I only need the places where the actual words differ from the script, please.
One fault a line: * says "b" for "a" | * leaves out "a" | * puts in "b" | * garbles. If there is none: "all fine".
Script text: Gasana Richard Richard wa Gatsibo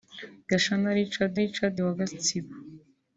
all fine